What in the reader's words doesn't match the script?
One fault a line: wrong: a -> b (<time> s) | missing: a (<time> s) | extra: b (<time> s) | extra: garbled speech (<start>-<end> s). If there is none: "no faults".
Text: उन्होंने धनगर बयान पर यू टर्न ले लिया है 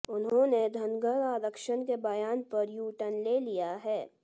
extra: आरक्षण के (1.2 s)